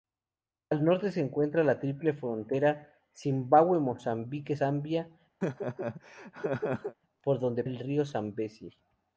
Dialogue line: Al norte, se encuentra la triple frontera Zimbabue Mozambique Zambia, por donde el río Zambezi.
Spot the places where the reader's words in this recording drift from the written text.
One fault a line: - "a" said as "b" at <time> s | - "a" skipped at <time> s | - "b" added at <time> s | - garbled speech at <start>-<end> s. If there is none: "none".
none